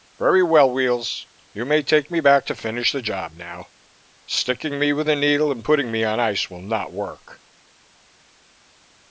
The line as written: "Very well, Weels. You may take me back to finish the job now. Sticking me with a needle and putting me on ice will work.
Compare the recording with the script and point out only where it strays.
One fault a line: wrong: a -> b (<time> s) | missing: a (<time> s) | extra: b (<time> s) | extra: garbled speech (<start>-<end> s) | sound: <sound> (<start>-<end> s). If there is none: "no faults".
extra: not (6.6 s)